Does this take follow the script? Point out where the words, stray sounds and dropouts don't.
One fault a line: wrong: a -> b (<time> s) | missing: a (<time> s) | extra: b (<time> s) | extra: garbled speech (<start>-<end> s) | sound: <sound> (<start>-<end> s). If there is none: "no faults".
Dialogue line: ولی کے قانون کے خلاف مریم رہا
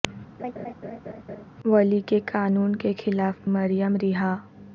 sound: laugh (0.4-1.5 s)